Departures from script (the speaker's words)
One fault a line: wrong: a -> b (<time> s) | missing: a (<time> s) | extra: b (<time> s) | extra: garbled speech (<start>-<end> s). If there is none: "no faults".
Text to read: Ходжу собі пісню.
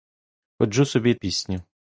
no faults